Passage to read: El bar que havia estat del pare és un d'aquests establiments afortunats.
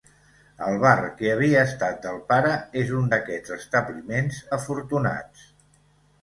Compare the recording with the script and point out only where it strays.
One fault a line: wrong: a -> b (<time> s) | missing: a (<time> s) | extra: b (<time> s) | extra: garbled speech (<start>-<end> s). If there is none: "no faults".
no faults